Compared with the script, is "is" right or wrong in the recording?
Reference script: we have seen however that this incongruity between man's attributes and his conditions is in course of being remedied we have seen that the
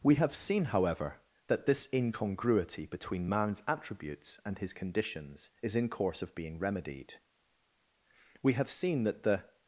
right